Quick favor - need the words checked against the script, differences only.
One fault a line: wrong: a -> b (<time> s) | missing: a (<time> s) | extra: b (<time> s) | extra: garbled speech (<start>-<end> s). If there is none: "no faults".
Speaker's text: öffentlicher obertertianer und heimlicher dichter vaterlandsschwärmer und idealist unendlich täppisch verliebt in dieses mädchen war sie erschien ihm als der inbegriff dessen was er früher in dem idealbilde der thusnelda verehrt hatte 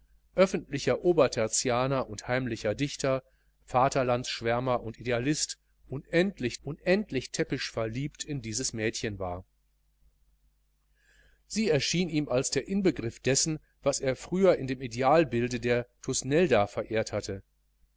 extra: unendlich (6.6 s)